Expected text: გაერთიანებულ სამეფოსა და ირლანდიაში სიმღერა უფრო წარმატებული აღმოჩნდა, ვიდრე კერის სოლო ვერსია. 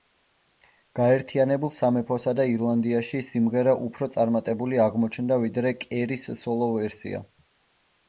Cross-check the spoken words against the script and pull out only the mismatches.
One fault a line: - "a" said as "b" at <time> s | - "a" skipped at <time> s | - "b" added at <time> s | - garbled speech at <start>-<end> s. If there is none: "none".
none